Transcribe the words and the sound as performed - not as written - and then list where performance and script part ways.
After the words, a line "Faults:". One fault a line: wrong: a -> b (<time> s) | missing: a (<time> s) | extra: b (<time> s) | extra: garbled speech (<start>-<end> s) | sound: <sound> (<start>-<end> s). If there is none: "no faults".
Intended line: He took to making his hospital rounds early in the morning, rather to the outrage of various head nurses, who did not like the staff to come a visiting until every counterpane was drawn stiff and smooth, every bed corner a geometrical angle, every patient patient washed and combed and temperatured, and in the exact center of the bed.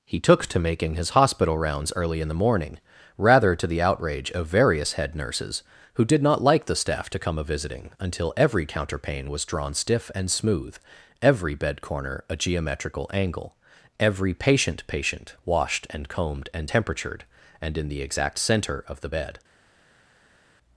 He took to making his hospital rounds early in the morning, rather to the outrage of various head nurses, who did not like the staff to come a visiting until every counterpane was drawn stiff and smooth, every bed corner a geometrical angle, every patient patient washed and combed and temperatured, and in the exact center of the bed.
Faults:
no faults